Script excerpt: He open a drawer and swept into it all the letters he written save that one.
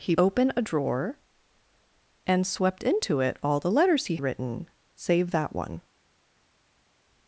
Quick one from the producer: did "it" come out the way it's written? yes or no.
yes